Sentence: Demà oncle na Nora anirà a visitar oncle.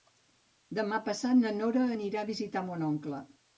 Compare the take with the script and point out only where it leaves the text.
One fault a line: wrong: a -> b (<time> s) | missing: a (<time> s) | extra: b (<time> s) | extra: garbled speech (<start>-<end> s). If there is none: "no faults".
wrong: oncle -> passat (1.1 s)
extra: mon (2.7 s)